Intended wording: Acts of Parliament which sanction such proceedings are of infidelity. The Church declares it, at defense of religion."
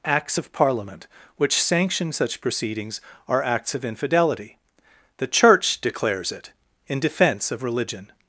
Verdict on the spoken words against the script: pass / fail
fail